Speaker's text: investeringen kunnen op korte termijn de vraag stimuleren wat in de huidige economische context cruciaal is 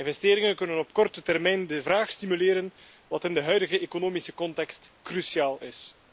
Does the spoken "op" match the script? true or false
true